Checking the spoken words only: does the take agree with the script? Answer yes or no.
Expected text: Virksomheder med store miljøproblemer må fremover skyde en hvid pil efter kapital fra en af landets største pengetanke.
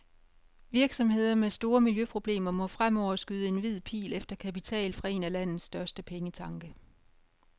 yes